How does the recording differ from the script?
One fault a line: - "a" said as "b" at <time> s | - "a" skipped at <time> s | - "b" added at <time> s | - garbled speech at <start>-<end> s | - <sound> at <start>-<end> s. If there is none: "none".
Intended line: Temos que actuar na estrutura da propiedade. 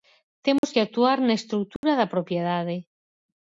- dropout at 0.6-0.6 s
- dropout at 1.8-1.8 s